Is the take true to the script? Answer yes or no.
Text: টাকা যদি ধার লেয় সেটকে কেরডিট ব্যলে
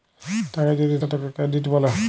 no